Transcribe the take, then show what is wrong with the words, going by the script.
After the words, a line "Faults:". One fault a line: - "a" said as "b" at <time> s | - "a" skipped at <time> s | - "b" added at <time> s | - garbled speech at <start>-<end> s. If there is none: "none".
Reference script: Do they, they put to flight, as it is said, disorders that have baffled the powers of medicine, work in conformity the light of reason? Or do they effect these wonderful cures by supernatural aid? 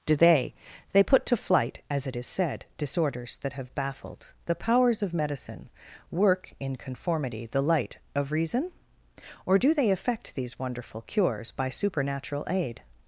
Do they, they put to flight, as it is said, disorders that have baffled the powers of medicine, work in conformity the light of reason? Or do they effect these wonderful cures by supernatural aid?
Faults:
none